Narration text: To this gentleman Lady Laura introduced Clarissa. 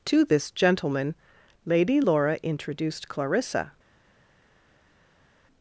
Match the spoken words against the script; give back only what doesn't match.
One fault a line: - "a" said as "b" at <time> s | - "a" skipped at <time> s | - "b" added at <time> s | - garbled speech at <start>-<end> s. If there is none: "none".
none